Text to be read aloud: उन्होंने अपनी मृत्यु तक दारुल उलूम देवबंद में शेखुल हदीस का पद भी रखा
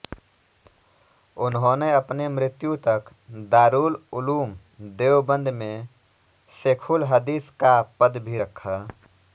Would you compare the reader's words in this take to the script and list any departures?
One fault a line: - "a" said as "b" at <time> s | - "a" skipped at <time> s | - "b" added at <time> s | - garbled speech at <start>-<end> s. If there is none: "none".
none